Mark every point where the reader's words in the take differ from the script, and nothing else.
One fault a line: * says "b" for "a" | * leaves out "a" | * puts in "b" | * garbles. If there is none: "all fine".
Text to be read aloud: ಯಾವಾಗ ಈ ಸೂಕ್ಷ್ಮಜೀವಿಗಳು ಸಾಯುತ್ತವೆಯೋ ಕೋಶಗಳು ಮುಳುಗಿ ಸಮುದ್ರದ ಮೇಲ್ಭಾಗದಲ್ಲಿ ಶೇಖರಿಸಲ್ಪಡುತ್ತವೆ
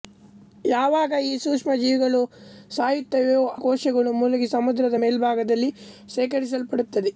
all fine